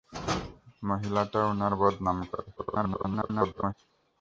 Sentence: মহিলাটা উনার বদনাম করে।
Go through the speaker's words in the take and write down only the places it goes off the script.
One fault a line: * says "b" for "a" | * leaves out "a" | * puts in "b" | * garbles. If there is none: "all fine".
* garbles